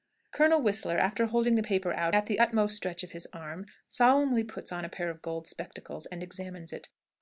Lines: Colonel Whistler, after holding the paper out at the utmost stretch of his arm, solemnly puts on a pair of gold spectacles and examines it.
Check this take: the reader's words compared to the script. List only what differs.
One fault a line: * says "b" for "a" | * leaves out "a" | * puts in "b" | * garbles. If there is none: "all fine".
all fine